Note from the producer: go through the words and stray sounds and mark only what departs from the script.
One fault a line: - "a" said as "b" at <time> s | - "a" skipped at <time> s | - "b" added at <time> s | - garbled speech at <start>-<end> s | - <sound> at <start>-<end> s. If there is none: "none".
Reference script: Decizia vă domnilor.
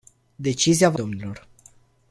none